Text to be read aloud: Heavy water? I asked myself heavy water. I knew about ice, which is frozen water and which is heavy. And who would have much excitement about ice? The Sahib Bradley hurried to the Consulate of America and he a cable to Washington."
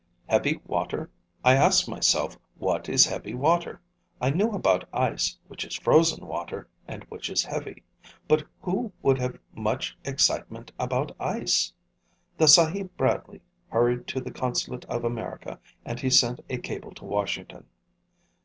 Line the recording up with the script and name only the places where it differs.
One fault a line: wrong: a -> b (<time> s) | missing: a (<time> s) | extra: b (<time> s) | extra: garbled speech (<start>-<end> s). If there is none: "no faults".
extra: what is (2.6 s)
wrong: And -> But (8.3 s)
extra: sent (16.1 s)